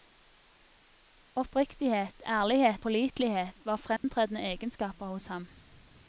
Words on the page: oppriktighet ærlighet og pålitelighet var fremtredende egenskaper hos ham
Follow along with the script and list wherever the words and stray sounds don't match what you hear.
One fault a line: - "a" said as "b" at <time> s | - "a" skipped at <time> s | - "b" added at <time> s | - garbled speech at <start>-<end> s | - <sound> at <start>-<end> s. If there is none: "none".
- "og" skipped at 2.9 s
- dropout at 4.0-4.0 s